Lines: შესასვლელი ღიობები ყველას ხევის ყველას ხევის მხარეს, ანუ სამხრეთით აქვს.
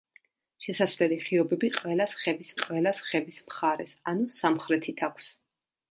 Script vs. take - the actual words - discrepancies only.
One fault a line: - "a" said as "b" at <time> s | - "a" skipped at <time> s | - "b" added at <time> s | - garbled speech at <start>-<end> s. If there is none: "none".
none